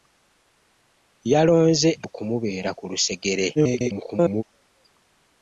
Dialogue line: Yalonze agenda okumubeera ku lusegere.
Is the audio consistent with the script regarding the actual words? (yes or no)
no